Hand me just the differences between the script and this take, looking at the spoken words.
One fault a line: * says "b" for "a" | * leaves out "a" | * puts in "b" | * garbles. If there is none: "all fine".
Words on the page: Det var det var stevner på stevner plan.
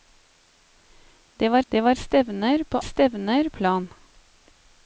all fine